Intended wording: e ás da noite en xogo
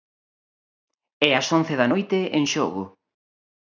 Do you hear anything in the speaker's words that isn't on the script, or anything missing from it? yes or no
yes